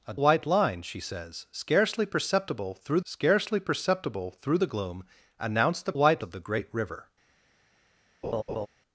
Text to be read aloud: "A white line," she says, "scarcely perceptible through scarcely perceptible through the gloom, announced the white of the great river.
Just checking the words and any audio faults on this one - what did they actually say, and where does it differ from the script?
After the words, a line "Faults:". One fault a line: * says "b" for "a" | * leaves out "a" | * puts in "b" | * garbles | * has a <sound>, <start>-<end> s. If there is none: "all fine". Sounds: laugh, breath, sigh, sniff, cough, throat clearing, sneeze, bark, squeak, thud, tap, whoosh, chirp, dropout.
"A white line," she says, "scarcely perceptible through scarcely perceptible through the gloom, announced the white of the great river.
Faults:
* has a laugh, 8.2-8.7 s